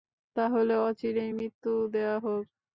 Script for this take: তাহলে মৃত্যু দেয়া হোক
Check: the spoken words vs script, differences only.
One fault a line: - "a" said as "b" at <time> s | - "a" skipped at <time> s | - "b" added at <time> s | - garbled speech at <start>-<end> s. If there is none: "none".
- "অচিরেই" added at 0.8 s